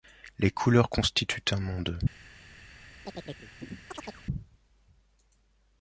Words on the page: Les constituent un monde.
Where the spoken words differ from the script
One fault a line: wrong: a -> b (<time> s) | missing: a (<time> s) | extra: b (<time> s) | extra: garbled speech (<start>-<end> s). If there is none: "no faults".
extra: couleurs (0.5 s)